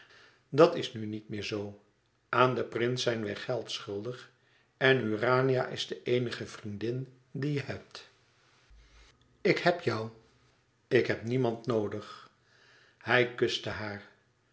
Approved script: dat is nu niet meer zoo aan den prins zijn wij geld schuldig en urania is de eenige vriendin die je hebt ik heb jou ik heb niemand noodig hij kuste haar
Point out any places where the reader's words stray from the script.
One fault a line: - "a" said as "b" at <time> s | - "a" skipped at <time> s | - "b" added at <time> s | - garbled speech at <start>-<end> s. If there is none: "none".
none